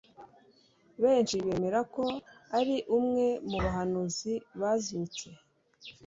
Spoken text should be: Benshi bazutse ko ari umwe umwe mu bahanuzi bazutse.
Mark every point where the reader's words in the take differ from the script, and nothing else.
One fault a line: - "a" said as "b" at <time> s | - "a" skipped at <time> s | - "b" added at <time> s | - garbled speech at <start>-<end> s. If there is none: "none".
- "bazutse" said as "bemera" at 1.4 s
- "umwe" skipped at 3.3 s